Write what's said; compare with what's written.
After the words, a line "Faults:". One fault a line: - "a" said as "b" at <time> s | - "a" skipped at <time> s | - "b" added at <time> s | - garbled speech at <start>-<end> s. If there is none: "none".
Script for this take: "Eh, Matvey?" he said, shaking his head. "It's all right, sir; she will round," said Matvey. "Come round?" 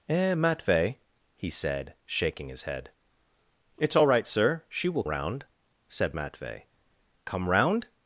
"Eh, Matvey?" he said, shaking his head. "It's all right, sir; she will round," said Matvey. "Come round?"
Faults:
none